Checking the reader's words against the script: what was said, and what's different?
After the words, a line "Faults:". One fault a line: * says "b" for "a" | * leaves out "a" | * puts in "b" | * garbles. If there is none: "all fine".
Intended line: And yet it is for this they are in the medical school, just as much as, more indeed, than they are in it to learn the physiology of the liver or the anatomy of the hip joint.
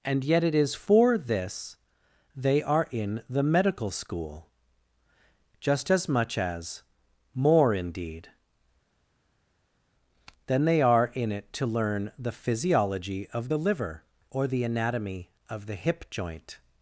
And yet it is for this they are in the medical school, just as much as, more indeed, than they are in it to learn the physiology of the liver or the anatomy of the hip joint.
Faults:
all fine